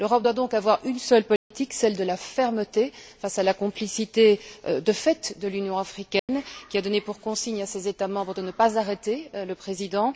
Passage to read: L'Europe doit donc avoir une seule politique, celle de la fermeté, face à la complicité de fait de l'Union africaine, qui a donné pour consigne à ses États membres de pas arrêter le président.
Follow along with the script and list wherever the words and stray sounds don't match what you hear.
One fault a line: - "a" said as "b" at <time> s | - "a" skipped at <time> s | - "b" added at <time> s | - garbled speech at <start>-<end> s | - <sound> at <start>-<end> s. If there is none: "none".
- dropout at 1.4-1.5 s
- dropout at 6.2-6.3 s
- "ne" added at 8.4 s